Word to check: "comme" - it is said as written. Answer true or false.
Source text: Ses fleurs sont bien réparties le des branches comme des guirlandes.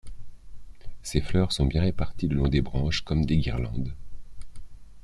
true